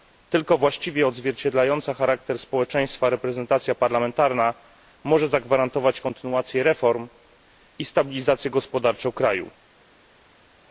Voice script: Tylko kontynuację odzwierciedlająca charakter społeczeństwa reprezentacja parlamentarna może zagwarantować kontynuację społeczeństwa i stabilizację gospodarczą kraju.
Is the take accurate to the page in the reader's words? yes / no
no